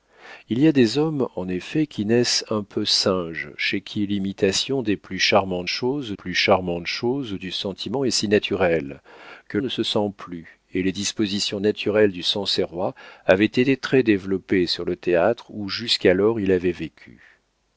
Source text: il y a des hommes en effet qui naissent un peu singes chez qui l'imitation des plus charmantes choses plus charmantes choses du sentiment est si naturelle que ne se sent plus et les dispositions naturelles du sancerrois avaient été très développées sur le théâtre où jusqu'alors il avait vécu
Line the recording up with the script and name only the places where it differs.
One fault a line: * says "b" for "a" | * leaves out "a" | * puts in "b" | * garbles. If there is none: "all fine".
all fine